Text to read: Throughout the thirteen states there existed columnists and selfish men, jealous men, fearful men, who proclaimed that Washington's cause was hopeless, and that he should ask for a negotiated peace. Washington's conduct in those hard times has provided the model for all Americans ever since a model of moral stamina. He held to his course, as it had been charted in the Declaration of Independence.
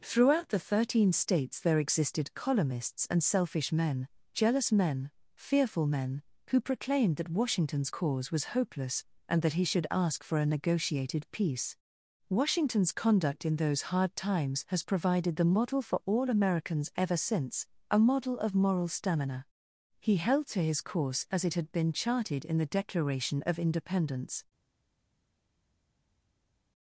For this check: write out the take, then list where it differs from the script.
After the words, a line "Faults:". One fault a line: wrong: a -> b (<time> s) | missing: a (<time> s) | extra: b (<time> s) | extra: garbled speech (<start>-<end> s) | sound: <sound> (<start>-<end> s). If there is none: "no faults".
Throughout the thirteen states there existed columnists and selfish men, jealous men, fearful men, who proclaimed that Washington's cause was hopeless, and that he should ask for a negotiated peace. Washington's conduct in those hard times has provided the model for all Americans ever since a model of moral stamina. He held to his course, as it had been charted in the Declaration of Independence.
Faults:
no faults